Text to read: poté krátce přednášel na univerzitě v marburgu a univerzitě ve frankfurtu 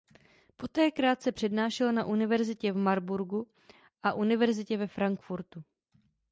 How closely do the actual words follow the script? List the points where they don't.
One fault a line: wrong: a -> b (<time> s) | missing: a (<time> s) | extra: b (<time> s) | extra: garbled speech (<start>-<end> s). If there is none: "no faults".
no faults